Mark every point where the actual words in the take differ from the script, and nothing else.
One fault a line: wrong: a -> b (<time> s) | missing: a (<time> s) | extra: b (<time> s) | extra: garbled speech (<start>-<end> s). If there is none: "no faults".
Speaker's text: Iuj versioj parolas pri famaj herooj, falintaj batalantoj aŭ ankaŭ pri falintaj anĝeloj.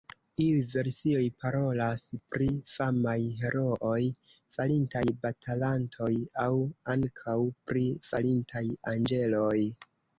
no faults